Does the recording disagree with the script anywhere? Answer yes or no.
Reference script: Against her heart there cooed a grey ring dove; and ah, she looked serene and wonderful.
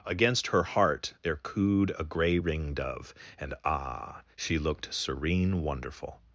yes